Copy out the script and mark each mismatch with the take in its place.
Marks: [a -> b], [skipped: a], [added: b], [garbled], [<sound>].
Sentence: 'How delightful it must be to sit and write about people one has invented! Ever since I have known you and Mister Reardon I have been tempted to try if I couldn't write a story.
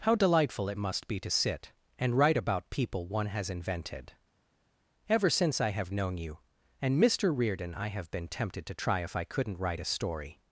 'How delightful it must be to sit and write about people one has invented! Ever since I have known you and Mister Reardon I have been tempted to try if I couldn't write a story.